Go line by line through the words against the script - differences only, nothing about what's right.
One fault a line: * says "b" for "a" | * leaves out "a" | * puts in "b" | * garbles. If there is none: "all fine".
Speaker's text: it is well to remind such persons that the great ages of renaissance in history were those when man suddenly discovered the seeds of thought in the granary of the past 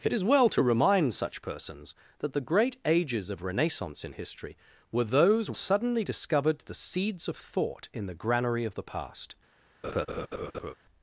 * leaves out "when man"